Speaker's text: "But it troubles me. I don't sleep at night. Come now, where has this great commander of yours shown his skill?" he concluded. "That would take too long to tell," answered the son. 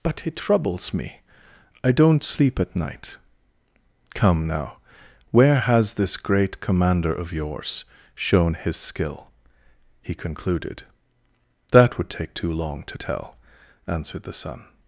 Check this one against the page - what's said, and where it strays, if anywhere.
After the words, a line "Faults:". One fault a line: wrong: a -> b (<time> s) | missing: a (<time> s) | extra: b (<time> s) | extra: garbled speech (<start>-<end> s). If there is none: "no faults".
"But it troubles me. I don't sleep at night. Come now, where has this great commander of yours shown his skill?" he concluded. "That would take too long to tell," answered the son.
Faults:
no faults